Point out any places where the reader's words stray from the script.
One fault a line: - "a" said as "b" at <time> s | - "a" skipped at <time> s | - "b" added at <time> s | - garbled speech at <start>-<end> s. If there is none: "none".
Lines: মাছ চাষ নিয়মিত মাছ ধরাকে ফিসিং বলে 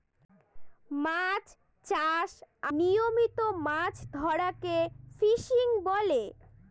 none